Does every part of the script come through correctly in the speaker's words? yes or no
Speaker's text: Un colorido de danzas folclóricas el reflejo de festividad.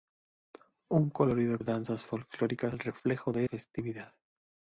yes